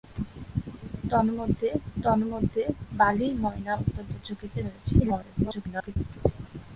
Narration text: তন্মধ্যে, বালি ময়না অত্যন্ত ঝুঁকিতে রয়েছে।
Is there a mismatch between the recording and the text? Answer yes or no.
yes